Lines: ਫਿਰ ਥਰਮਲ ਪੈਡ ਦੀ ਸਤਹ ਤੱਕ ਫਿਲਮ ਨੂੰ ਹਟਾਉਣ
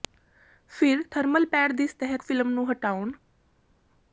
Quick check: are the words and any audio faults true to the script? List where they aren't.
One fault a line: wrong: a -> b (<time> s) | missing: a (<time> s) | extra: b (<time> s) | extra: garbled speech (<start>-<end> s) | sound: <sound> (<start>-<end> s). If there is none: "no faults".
missing: ਤੱਕ (2.2 s)